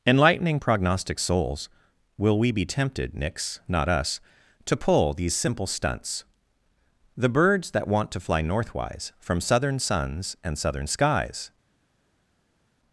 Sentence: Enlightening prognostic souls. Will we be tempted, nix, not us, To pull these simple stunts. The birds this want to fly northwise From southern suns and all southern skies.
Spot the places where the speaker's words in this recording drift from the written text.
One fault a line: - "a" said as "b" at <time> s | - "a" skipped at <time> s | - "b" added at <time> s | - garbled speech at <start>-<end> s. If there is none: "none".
- "this" said as "that" at 7.7 s
- "all" skipped at 10.6 s